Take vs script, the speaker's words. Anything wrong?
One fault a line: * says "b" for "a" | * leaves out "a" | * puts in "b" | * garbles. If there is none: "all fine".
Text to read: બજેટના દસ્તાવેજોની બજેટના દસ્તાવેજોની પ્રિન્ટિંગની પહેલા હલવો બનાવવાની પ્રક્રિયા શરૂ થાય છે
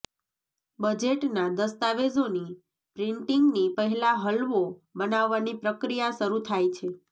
* leaves out "બજેટના દસ્તાવેજોની"